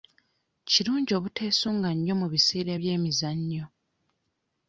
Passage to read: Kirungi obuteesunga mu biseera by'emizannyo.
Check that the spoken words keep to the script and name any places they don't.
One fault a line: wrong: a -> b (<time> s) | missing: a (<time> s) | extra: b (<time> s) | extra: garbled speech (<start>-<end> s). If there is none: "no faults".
extra: nnyo (1.9 s)